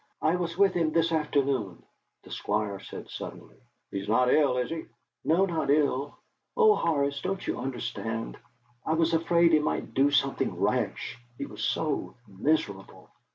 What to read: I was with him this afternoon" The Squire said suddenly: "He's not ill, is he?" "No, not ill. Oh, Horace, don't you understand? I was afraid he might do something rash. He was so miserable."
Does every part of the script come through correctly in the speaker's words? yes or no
yes